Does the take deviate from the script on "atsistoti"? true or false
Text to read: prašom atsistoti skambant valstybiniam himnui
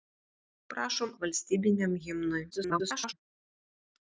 true